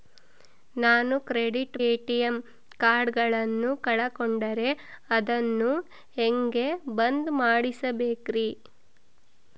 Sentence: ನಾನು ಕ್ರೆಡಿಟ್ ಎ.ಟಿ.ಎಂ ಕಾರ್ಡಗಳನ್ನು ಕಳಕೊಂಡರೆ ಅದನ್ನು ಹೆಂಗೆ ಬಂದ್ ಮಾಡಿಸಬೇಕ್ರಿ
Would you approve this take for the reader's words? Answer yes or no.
yes